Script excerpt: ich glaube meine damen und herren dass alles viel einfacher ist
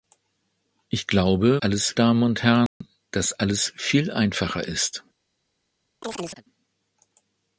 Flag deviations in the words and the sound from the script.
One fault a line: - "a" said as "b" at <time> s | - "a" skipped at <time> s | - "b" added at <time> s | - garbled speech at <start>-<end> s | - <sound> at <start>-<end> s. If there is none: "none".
- "meine" said as "alles" at 1.6 s
- dropout at 2.7-2.8 s
- chirp at 6.0-6.4 s